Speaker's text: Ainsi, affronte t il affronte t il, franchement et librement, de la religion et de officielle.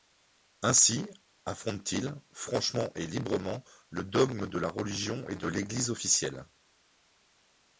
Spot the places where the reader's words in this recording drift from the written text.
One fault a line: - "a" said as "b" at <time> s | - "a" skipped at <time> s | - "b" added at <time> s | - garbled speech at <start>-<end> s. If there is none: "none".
- "affronte t il" skipped at 2.1 s
- "le dogme" added at 3.9 s
- "l'Église" added at 5.5 s